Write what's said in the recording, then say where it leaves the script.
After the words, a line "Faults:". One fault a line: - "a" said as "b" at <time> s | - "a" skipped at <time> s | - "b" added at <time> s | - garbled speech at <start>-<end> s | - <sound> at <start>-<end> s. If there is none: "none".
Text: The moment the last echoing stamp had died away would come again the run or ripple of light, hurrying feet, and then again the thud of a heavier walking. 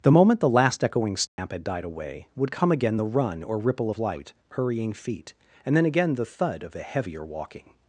The moment the last echoing stamp had died away would come again the run or ripple of light, hurrying feet, and then again the thud of a heavier walking.
Faults:
- dropout at 1.3-1.4 s